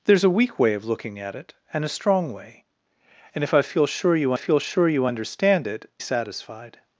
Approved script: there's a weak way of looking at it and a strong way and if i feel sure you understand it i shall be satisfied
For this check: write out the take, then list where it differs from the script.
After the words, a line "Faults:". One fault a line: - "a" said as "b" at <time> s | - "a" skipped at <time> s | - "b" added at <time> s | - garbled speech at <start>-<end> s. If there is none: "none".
there's a weak way of looking at it and a strong way and if i feel sure you feel sure you understand it satisfied
Faults:
- "understand it i shall be" said as "feel sure you understand it" at 4.3 s